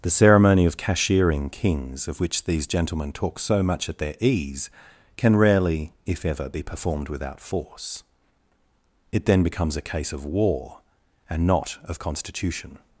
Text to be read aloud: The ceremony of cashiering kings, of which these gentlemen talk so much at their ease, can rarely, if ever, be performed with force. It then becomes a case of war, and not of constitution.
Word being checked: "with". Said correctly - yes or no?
no